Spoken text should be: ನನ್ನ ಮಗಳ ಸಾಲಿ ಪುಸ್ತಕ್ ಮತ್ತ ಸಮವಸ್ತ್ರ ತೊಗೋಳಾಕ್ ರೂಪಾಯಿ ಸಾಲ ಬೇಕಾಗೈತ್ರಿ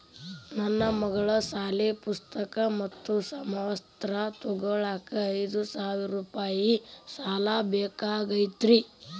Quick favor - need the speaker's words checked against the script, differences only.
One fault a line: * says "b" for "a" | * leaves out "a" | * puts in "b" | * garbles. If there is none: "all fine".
* puts in "ಐದು ಸಾವಿರ"